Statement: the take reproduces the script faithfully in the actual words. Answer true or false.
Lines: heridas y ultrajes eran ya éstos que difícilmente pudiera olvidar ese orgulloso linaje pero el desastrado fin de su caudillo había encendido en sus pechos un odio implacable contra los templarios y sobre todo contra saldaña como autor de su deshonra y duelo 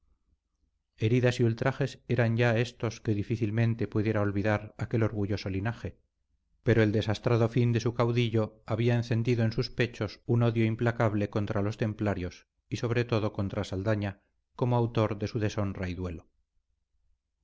false